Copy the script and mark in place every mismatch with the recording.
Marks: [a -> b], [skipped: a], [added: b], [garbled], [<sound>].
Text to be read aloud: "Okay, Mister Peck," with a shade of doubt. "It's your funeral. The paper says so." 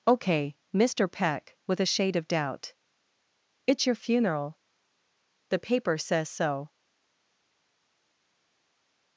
"Okay, Mister Peck," with a shade of doubt. "It's your funeral. The paper says so."